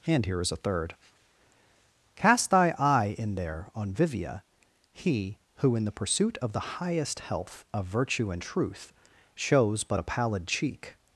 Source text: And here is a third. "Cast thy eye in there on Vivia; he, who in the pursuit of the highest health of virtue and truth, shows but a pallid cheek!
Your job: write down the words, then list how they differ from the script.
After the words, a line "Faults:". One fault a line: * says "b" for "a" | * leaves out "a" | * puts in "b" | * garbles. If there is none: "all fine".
And here is a third. "Cast thy eye in there on Vivia; he, who in the pursuit of the highest health of virtue and truth, shows but a pallid cheek!
Faults:
all fine